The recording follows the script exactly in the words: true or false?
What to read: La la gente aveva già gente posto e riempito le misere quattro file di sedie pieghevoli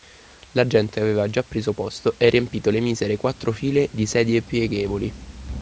false